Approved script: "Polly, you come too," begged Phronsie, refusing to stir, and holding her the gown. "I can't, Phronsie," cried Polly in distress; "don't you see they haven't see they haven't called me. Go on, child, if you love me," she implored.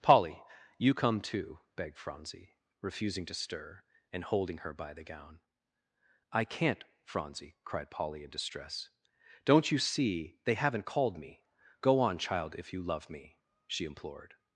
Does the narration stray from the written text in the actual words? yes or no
yes